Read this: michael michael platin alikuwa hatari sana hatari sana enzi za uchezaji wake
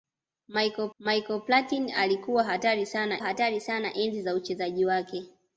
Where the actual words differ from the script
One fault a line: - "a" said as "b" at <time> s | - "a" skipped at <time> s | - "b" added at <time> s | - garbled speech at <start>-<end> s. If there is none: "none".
none